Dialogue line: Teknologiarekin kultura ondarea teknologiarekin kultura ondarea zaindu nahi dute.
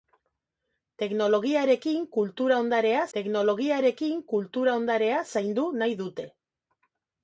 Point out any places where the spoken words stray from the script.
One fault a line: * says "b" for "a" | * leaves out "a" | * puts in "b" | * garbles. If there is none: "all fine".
all fine